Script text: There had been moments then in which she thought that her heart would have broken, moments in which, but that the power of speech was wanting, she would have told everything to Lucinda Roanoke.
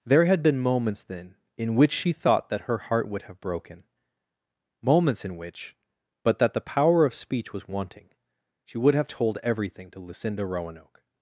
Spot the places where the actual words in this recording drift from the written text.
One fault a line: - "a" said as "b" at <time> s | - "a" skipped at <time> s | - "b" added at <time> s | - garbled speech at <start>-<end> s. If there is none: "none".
none